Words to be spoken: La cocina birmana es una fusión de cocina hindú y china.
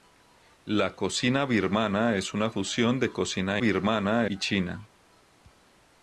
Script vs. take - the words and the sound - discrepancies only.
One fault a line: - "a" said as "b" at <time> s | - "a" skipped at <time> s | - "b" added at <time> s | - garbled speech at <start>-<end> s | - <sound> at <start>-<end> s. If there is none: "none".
- "hindú" said as "birmana" at 3.6 s